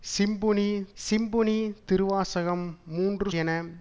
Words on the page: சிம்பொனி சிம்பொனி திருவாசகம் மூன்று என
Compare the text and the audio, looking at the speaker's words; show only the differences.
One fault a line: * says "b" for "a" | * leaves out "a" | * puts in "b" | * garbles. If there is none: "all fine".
all fine